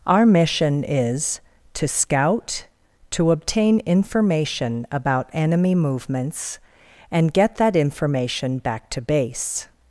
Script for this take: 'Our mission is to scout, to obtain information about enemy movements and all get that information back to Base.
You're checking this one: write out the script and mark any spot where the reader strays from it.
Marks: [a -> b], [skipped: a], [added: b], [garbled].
'Our mission is to scout, to obtain information about enemy movements and [skipped: all] get that information back to Base.